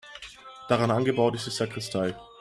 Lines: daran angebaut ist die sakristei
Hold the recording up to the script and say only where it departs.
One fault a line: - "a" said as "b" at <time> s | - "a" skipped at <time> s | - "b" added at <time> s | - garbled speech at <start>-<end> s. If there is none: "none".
none